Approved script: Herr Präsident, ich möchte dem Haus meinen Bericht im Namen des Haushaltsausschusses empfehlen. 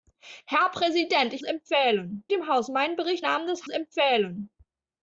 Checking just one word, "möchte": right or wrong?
wrong